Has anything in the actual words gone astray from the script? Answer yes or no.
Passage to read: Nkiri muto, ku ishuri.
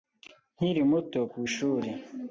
no